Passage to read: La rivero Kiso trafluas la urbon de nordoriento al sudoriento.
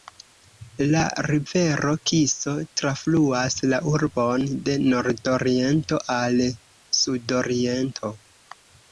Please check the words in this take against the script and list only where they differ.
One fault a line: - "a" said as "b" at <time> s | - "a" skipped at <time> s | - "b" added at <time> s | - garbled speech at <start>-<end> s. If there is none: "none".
none